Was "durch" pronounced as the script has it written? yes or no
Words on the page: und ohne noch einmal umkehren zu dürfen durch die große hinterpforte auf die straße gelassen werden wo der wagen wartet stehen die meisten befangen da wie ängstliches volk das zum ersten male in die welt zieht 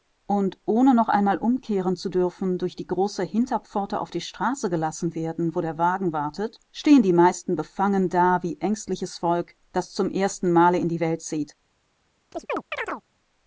yes